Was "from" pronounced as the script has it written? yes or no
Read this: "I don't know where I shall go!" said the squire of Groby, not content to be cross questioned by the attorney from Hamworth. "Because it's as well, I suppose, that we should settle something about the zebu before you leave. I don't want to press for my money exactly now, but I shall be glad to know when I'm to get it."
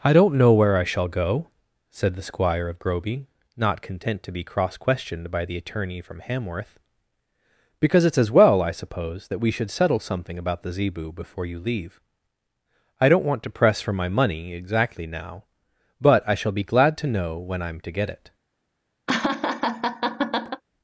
yes